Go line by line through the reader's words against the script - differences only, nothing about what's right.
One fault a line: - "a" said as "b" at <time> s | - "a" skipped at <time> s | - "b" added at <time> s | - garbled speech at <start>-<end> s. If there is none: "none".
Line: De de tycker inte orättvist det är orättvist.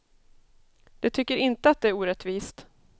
- "de" skipped at 1.1 s
- "orättvist" said as "att" at 1.7 s